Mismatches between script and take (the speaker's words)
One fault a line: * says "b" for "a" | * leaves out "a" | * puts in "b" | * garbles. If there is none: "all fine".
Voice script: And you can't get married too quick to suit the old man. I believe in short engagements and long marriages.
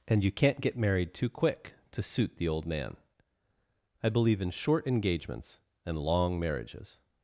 all fine